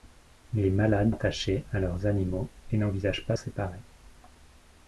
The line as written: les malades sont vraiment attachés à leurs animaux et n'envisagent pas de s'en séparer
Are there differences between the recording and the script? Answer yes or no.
yes